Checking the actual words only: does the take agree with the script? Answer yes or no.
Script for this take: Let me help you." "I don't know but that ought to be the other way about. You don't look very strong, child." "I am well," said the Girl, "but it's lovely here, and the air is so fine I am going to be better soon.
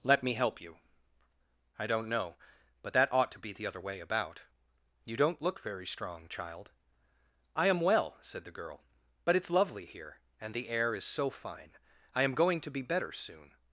yes